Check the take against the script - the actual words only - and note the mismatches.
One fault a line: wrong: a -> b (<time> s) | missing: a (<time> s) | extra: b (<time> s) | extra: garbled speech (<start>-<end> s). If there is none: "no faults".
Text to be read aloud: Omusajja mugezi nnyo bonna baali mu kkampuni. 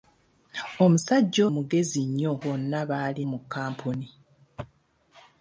no faults